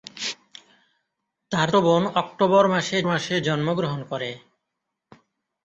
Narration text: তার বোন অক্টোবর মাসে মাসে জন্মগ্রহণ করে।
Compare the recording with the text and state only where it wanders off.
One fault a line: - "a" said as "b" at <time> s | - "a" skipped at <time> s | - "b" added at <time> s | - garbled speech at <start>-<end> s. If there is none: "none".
none